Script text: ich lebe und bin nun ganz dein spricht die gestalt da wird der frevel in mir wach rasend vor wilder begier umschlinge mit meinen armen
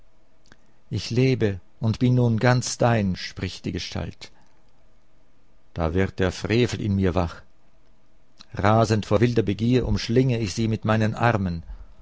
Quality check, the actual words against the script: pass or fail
fail